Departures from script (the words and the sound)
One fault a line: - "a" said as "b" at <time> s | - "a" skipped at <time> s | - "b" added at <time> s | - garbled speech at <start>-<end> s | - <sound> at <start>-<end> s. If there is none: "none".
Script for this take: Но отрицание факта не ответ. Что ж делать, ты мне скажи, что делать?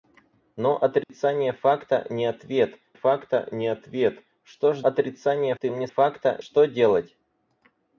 - dropout at 1.0-1.1 s
- "факта не ответ" added at 2.9 s
- "делать" said as "отрицание" at 4.8 s
- "скажи" said as "факта" at 5.9 s